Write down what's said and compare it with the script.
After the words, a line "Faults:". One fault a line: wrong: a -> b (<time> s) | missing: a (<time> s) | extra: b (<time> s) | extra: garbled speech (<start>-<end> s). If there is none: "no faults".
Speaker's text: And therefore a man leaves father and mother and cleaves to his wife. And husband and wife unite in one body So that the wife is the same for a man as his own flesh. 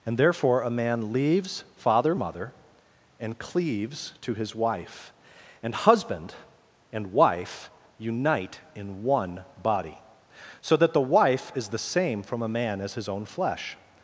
And therefore a man leaves father mother and cleaves to his wife. And husband and wife unite in one body So that the wife is the same from a man as his own flesh.
Faults:
missing: and (2.1 s)
wrong: for -> from (12.2 s)